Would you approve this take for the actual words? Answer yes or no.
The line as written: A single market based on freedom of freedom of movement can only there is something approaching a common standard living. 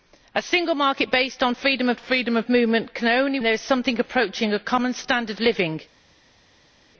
yes